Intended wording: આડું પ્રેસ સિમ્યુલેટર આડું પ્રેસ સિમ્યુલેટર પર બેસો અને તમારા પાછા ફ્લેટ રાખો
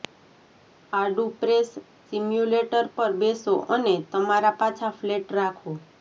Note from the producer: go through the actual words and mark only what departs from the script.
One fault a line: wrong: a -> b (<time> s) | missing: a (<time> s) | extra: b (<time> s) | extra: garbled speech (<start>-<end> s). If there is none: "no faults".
missing: આડું પ્રેસ સિમ્યુલેટર (2.8 s)